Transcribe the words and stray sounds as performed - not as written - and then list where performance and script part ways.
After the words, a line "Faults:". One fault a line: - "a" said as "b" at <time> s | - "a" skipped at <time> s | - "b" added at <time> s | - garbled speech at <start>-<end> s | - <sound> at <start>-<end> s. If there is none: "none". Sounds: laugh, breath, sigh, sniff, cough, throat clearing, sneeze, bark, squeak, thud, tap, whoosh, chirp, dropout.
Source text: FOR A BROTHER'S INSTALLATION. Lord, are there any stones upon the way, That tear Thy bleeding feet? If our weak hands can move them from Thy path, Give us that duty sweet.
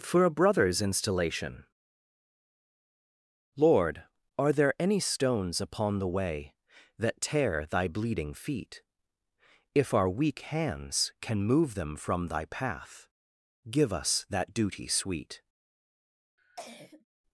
FOR A BROTHER'S INSTALLATION. Lord, are there any stones upon the way, That tear Thy bleeding feet? If our weak hands can move them from Thy path, Give us that duty sweet.
Faults:
- cough at 16.4-17.0 s